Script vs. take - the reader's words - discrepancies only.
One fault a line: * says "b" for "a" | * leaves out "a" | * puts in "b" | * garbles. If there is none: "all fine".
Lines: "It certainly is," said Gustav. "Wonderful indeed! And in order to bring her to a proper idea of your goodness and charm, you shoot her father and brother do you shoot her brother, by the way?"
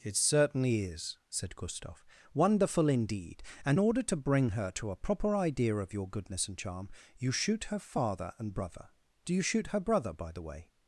* leaves out "in"